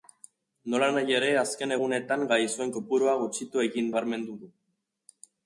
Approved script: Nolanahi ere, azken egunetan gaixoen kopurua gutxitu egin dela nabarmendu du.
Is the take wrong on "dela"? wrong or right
wrong